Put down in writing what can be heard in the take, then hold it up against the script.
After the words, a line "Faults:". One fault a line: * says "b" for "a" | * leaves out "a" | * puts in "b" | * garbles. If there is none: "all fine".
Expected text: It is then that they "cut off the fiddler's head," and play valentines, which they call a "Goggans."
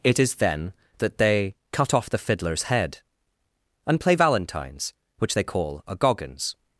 It is then that they "cut off the fiddler's head," and play valentines, which they call a "Goggans."
Faults:
all fine